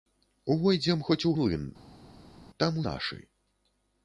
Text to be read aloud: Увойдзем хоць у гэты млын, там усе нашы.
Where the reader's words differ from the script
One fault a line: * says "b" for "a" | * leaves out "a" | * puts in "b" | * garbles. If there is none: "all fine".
* leaves out "гэты"
* leaves out "усе"